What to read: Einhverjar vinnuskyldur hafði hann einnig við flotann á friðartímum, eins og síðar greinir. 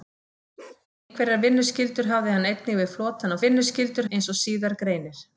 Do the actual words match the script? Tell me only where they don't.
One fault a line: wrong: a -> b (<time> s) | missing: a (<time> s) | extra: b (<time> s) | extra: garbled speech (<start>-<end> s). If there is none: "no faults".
wrong: friðartímum -> vinnuskyldur (3.4 s)